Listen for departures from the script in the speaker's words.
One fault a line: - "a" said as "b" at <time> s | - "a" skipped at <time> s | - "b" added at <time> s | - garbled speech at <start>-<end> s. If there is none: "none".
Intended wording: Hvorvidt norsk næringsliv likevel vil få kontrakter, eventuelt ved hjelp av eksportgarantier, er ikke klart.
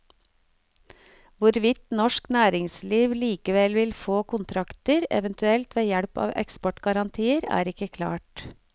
none